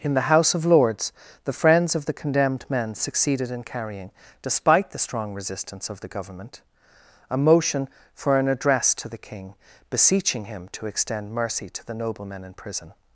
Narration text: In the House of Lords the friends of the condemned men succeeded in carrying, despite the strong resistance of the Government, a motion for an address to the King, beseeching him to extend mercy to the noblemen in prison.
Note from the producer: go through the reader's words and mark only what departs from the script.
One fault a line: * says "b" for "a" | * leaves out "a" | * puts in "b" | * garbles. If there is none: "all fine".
all fine